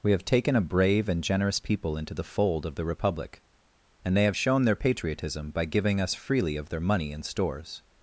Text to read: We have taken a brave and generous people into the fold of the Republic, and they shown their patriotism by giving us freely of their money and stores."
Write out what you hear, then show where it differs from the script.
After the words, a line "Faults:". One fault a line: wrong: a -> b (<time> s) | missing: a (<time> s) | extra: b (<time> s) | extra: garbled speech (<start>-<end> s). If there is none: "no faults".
We have taken a brave and generous people into the fold of the Republic, and they have shown their patriotism by giving us freely of their money and stores."
Faults:
extra: have (4.2 s)